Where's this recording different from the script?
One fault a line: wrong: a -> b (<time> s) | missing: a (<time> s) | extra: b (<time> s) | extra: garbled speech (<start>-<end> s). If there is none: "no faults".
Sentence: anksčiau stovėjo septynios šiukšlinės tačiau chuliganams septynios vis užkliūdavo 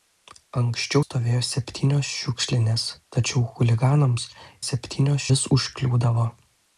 no faults